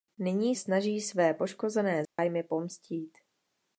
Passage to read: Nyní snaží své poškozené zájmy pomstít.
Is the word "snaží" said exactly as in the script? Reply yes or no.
yes